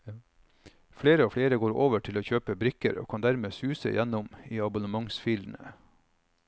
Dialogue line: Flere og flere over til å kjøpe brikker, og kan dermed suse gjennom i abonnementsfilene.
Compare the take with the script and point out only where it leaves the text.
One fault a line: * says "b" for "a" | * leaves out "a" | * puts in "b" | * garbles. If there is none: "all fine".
* puts in "går"